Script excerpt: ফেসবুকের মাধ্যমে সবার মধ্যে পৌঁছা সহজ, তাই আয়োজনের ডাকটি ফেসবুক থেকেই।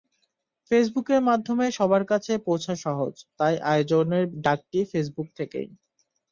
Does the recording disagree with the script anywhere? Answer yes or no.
yes